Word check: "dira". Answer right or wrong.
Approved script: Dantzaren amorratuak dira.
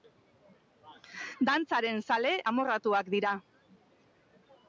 right